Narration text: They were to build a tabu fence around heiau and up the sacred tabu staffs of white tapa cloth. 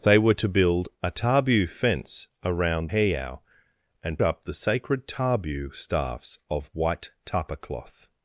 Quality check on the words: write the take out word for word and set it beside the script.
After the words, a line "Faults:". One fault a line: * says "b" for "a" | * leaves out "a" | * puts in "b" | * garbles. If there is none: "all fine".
They were to build a tabu fence around heiau and up the sacred tabu staffs of white tapa cloth.
Faults:
all fine